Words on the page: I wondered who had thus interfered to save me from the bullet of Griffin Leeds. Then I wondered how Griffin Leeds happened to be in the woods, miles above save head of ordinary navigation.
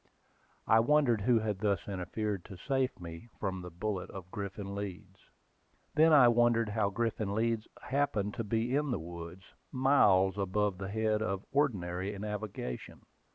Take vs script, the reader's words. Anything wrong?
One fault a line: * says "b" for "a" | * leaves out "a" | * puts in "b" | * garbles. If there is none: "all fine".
* says "the" for "save"